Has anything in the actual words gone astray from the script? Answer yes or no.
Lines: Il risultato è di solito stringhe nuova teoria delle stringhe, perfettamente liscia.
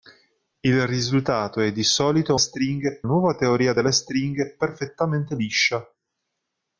no